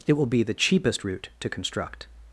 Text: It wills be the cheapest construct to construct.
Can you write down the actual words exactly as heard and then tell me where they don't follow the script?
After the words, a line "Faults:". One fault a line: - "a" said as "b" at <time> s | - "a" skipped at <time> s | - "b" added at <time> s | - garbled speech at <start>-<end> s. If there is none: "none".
It will be the cheapest route to construct.
Faults:
- "wills" said as "will" at 0.1 s
- "construct" said as "route" at 1.0 s